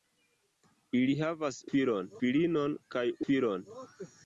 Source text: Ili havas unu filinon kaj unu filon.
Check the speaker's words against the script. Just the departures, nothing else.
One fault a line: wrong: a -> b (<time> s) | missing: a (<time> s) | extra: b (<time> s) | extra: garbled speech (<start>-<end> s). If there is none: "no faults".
wrong: unu -> filon (1.7 s)
missing: unu (3.1 s)